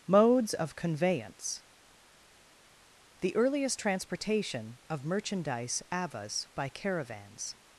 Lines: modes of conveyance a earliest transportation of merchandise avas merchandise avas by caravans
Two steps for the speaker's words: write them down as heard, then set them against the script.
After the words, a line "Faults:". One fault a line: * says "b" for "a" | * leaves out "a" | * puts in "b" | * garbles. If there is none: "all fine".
modes of conveyance the earliest transportation of merchandise avas by caravans
Faults:
* says "the" for "a"
* leaves out "merchandise avas"